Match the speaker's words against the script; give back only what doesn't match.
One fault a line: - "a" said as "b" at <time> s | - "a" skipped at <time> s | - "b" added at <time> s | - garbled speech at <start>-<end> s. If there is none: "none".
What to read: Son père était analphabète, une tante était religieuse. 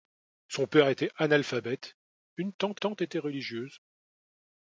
- "tante" added at 2.7 s